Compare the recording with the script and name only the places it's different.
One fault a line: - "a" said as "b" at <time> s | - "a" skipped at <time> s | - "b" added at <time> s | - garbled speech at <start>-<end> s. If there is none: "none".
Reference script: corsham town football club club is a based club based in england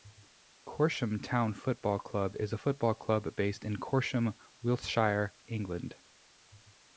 - "club" skipped at 2.4 s
- "based" said as "football" at 2.5 s
- "corsham wiltshire" added at 3.8 s